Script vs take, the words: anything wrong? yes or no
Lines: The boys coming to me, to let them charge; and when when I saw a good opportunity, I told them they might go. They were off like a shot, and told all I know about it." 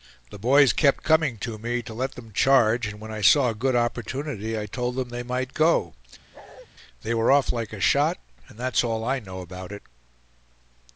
yes